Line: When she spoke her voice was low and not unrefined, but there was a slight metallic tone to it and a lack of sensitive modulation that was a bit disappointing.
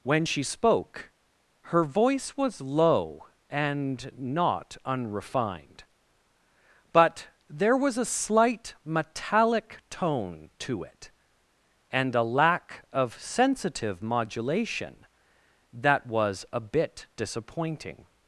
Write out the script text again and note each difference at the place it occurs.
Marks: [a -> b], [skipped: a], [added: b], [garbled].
When she spoke her voice was low and not unrefined, but there was a slight metallic tone to it and a lack of sensitive modulation that was a bit disappointing.